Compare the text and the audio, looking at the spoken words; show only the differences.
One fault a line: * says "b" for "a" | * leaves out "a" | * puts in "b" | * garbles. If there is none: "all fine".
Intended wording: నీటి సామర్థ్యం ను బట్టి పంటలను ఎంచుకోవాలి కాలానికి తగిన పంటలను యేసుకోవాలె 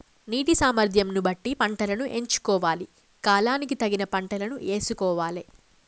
all fine